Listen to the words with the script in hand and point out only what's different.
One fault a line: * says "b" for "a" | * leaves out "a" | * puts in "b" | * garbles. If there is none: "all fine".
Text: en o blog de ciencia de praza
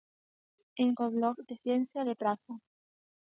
all fine